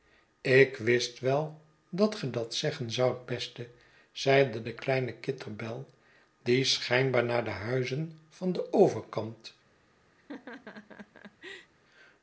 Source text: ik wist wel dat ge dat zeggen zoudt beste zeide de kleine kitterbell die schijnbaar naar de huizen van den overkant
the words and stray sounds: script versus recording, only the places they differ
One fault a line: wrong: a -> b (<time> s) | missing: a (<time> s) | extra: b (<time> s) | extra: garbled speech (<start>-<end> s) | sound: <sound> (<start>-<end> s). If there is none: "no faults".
sound: laugh (10.2-11.7 s)